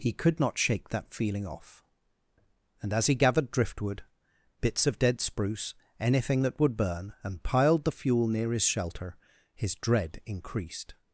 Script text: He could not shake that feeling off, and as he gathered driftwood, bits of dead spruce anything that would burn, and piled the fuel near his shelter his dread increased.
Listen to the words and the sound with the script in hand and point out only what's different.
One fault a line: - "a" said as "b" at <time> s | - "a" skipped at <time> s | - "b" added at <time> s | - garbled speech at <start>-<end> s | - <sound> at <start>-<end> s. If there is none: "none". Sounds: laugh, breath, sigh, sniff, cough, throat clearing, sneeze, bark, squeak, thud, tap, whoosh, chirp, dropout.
none